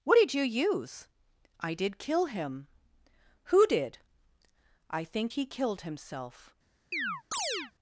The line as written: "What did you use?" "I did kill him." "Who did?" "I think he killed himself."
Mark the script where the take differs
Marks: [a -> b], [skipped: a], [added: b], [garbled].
"What did you use?" "I did kill him." "Who did?" "I think he killed himself."